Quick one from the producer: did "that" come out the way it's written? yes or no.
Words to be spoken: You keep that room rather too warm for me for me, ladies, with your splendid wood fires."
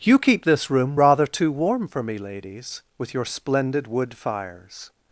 no